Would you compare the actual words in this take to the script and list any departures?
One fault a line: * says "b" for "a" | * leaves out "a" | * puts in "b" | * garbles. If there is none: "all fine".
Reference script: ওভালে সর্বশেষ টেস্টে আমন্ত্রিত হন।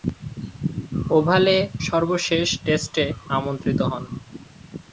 all fine